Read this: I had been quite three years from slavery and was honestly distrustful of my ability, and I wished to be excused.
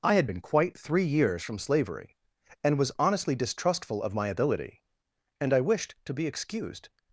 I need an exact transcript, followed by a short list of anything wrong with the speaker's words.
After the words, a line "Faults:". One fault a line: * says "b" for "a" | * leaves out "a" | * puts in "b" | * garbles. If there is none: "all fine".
I had been quite three years from slavery and was honestly distrustful of my ability, and I wished to be excused.
Faults:
all fine